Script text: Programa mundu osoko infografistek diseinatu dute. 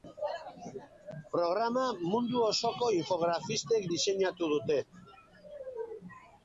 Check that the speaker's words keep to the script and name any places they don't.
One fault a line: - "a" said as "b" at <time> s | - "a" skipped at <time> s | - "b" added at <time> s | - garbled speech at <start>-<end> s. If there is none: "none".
none